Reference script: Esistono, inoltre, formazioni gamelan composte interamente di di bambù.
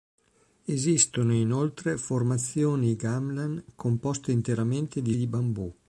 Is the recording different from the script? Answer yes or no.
no